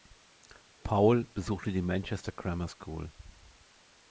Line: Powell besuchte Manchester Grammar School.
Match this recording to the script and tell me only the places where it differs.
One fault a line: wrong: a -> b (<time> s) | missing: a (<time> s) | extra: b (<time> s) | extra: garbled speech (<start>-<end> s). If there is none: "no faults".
extra: die (1.7 s)